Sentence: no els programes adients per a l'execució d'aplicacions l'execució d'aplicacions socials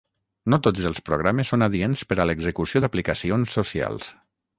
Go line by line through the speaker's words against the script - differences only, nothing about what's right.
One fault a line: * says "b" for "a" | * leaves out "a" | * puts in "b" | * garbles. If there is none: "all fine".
* puts in "tots"
* puts in "són"
* leaves out "l'execució d'aplicacions"